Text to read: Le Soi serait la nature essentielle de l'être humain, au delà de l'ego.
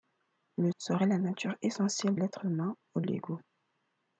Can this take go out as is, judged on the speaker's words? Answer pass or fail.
fail